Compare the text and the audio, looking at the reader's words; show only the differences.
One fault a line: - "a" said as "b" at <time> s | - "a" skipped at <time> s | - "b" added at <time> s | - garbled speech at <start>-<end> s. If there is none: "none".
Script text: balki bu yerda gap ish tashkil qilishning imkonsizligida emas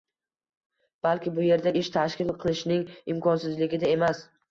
- "gap" skipped at 1.7 s